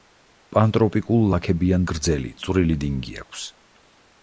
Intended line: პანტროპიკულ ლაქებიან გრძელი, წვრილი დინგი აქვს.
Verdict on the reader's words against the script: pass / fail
pass